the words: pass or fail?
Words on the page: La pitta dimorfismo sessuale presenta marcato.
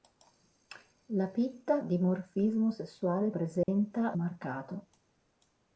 pass